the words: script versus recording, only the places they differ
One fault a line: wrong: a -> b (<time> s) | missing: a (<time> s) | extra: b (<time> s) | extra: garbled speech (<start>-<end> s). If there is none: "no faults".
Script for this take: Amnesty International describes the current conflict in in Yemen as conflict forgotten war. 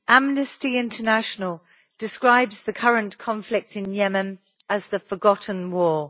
missing: in (3.9 s)
wrong: conflict -> the (4.9 s)